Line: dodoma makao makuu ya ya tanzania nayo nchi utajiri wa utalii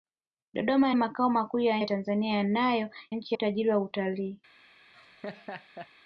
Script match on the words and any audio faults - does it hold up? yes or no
no